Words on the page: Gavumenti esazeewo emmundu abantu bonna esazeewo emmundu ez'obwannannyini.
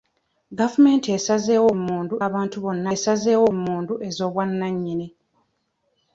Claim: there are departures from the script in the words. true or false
false